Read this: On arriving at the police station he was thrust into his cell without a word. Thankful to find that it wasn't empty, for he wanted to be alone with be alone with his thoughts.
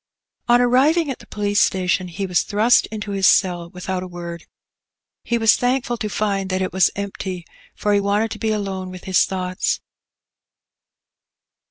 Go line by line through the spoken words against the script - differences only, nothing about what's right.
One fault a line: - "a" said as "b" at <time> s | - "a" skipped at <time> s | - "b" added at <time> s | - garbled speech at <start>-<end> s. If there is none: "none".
- "He was" added at 5.2 s
- "wasn't" said as "was" at 6.7 s
- "be alone with" skipped at 9.0 s